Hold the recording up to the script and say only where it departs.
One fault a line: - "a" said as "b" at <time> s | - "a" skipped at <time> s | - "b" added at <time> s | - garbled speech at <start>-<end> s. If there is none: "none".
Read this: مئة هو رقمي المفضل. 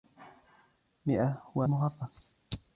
- "رقمي" skipped at 1.6 s